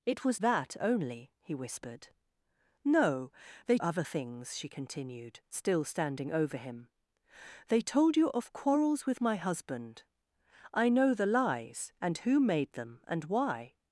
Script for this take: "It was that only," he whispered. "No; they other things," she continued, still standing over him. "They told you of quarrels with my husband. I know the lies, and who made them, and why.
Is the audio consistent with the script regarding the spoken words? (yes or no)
yes